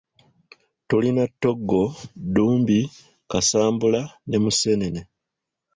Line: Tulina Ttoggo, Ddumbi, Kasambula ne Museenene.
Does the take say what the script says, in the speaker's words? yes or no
yes